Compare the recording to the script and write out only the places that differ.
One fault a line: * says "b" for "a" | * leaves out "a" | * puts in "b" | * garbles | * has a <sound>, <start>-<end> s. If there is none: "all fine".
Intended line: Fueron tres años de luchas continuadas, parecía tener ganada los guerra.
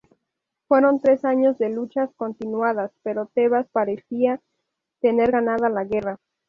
* puts in "pero Tebas"
* says "la" for "los"